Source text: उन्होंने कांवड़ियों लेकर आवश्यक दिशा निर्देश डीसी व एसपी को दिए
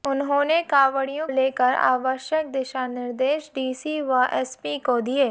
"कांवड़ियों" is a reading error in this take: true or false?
false